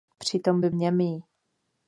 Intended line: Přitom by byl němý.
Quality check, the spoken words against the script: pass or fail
fail